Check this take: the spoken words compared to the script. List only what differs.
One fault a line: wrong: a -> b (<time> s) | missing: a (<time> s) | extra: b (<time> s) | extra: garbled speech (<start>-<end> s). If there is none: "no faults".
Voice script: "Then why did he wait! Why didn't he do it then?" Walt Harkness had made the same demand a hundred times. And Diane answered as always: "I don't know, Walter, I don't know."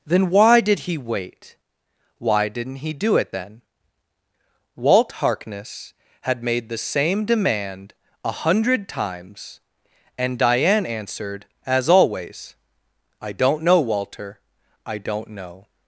no faults